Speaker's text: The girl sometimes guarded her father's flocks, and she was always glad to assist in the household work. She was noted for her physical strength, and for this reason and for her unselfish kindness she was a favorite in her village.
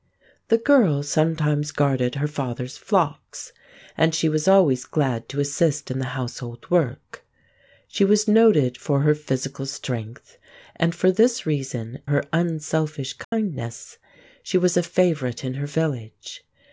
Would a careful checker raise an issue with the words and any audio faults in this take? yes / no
yes